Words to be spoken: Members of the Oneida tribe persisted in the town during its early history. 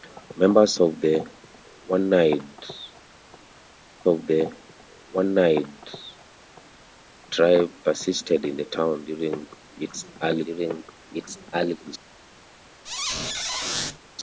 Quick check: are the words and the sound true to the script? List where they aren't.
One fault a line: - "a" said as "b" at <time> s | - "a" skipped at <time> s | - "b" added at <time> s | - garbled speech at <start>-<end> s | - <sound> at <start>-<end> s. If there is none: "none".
- "of the Oneida" added at 4.1 s
- "during its early" added at 10.4 s
- squeak at 12.8-14.0 s